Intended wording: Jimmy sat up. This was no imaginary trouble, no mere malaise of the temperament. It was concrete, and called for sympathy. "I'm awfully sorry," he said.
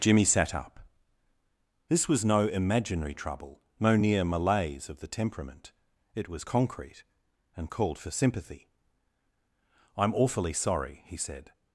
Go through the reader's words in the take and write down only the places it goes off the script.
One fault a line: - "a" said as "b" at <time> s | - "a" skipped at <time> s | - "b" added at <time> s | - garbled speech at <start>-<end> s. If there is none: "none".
- "mere" said as "near" at 4.0 s